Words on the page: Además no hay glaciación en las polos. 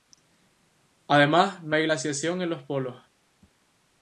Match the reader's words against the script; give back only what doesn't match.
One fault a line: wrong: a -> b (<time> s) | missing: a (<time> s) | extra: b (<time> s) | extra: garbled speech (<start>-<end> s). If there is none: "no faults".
wrong: las -> los (2.5 s)